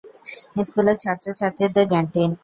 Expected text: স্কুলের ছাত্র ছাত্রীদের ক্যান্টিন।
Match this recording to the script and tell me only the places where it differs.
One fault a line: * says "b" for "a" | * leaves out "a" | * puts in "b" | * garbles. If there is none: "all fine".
all fine